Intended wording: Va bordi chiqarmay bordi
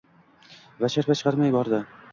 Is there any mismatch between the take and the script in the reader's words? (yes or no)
yes